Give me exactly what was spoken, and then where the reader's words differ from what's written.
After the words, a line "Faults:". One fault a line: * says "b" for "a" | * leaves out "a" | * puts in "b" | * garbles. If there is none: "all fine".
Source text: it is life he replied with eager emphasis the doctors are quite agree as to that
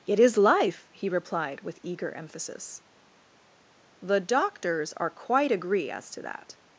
it is life he replied with eager emphasis the doctors are quite agree as to that
Faults:
all fine